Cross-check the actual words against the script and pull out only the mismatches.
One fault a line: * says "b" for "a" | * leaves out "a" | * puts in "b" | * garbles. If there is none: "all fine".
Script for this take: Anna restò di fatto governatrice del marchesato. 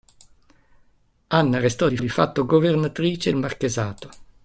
* puts in "di"
* leaves out "del"